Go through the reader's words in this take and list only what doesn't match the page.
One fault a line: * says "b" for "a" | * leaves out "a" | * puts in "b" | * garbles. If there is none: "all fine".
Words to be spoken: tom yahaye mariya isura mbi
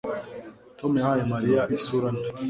all fine